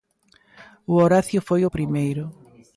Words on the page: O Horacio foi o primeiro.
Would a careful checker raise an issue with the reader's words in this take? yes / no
no